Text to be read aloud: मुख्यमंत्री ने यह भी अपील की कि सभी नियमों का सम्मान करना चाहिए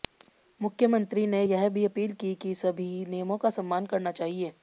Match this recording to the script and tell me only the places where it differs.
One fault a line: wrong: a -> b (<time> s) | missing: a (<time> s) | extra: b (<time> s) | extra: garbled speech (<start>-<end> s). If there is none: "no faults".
no faults